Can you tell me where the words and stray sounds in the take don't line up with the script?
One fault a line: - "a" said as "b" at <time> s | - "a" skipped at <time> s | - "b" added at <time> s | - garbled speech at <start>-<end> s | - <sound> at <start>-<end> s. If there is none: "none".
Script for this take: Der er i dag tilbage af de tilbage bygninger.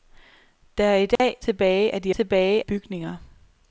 - dropout at 1.2-1.2 s